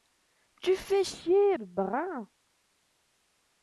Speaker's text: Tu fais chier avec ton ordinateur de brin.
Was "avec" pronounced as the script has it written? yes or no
no